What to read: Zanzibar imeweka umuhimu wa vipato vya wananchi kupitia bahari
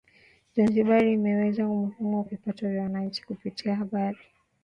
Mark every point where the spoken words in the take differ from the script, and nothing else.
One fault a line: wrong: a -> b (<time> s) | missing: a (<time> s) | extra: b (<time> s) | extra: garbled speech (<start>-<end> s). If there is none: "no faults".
no faults